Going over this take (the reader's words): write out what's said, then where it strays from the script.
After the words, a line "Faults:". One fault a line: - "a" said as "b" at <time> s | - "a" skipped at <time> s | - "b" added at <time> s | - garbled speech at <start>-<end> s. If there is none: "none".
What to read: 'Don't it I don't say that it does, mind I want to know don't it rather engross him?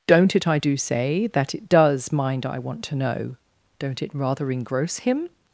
'Don't it I do say that it does, mind I want to know don't it rather engross him?
Faults:
- "don't" said as "do" at 0.6 s